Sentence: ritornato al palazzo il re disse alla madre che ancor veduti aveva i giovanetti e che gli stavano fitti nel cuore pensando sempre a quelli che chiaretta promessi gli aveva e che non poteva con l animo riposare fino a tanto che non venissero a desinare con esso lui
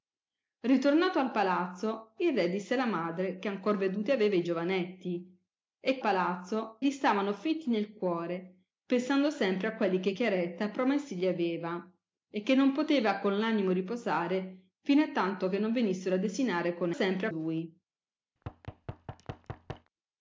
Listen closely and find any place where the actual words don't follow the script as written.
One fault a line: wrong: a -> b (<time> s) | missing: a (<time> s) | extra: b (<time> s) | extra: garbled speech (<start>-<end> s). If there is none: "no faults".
wrong: che -> palazzo (6.0 s)
wrong: esso -> sempre (16.9 s)